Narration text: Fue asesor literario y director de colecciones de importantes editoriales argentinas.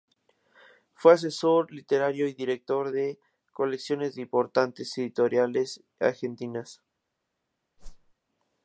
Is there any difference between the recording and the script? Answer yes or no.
no